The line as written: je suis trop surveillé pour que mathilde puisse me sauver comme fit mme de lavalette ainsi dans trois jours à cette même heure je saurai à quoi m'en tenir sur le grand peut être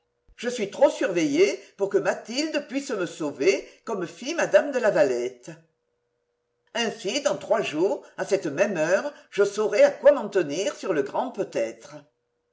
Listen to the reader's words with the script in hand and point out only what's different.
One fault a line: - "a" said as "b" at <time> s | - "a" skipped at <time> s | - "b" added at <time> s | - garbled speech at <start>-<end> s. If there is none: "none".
none